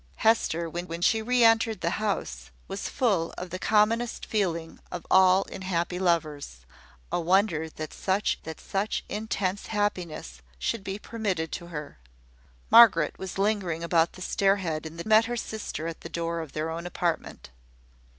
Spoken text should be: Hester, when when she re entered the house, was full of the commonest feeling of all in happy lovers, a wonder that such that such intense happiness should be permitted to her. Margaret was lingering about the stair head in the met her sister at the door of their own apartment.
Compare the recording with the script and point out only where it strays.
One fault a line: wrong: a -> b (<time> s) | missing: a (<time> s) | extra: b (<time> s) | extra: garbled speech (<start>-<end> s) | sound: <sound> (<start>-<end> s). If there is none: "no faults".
no faults